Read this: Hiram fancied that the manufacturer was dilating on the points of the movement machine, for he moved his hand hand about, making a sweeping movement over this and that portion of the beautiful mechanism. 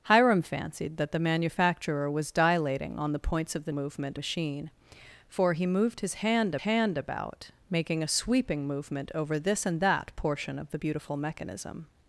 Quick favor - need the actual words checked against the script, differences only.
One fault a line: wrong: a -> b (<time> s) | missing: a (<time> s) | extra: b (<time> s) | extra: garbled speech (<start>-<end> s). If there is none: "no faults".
no faults